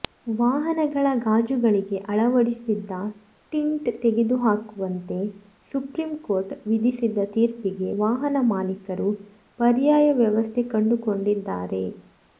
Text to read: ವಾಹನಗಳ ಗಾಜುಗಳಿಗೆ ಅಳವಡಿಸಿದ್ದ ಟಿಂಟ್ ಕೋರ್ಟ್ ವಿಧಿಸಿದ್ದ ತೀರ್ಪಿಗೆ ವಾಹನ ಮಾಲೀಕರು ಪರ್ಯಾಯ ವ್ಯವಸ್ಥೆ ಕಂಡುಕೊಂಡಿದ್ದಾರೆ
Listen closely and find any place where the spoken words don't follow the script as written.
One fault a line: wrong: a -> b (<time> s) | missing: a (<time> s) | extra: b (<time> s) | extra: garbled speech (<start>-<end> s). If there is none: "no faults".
extra: ತೆಗೆದುಹಾಕುವಂತೆ ಸುಪ್ರೀಂ (4.0 s)